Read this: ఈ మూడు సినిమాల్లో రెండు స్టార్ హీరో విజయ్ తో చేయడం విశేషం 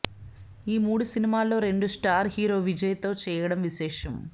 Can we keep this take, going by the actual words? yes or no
yes